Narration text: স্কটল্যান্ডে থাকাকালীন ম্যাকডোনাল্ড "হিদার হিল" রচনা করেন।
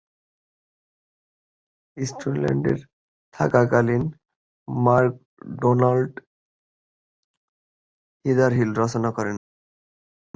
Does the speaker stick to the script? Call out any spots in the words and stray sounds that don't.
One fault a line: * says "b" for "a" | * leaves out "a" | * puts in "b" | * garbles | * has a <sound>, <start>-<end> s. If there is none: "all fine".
all fine